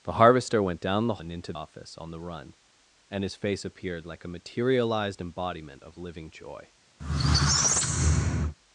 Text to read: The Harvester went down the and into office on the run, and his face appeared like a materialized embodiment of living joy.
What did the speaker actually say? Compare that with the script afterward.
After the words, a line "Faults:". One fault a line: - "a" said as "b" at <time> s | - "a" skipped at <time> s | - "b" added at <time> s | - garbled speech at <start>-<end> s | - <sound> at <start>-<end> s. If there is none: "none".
The Harvester went down the and into office on the run, and his face appeared like a materialized embodiment of living joy.
Faults:
- squeak at 7.0-8.5 s